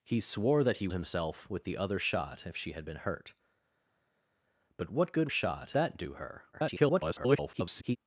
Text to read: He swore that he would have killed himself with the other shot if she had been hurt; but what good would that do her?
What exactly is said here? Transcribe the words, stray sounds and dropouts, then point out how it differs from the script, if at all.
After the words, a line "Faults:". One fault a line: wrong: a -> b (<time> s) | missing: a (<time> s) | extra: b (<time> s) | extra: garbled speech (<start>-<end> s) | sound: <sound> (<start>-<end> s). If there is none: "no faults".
He swore that he himself with the other shot if she had been hurt; but what good shot that do her? [garbled]
Faults:
missing: would have killed (0.9 s)
wrong: would -> shot (5.3 s)
extra: garbled speech (6.5-8.0 s)